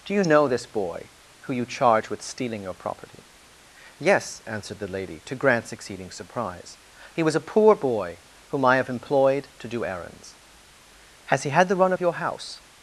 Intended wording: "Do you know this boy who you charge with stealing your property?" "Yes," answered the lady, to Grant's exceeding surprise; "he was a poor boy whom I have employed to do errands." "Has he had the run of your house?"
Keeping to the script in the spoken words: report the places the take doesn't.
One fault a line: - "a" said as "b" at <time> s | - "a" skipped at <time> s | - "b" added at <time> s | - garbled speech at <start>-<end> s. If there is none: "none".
none